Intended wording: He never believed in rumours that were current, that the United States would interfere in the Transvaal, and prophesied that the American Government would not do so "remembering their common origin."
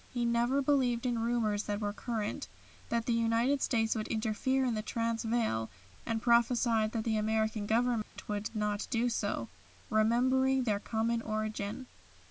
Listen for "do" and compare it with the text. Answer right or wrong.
right